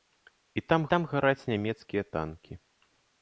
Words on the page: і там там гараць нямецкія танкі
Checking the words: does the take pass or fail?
pass